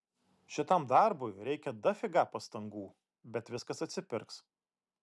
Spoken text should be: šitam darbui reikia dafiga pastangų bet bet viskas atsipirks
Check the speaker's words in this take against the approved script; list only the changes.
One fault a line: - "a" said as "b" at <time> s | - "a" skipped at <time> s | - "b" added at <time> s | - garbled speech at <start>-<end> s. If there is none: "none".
- "bet" skipped at 3.5 s